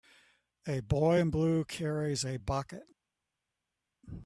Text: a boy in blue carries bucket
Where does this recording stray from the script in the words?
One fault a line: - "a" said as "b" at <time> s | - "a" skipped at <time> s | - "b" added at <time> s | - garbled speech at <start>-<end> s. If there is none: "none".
- "a" added at 2.2 s